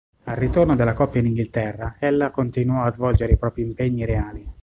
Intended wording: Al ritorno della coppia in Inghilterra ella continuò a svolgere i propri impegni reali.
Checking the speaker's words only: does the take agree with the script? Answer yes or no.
yes